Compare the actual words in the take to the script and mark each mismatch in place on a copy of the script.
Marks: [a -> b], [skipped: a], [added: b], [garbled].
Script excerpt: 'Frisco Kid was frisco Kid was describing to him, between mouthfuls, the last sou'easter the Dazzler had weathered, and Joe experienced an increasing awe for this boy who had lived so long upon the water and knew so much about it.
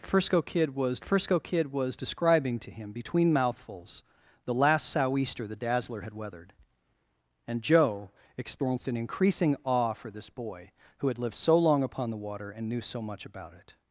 'Frisco Kid was frisco Kid was describing to him, between mouthfuls, the last sou'easter the Dazzler had weathered, and Joe experienced an increasing awe for this boy who had lived so long upon the water and knew so much about it.